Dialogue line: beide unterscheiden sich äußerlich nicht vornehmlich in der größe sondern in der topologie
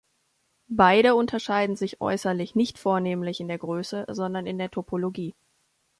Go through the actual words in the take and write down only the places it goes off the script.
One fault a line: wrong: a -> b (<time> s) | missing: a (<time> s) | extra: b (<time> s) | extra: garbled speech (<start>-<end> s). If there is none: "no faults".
no faults